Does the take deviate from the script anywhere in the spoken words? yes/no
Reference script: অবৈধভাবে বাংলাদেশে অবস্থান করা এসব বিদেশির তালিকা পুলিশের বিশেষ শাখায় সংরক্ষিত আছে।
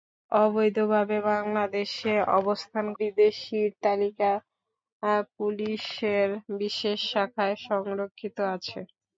yes